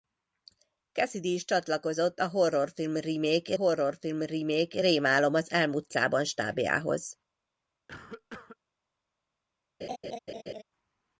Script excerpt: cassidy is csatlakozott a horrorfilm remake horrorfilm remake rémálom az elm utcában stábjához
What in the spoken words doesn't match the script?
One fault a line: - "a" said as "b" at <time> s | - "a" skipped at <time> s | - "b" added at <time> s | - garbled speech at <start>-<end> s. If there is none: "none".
none